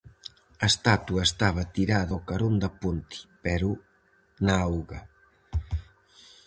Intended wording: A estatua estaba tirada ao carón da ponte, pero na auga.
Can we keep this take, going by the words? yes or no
yes